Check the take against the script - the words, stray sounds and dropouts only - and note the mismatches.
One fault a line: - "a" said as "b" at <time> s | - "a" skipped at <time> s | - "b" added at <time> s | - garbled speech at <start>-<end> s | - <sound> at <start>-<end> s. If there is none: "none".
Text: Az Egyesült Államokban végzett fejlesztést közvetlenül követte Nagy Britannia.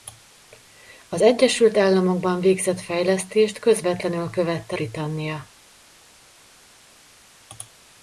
- "Nagy" skipped at 4.8 s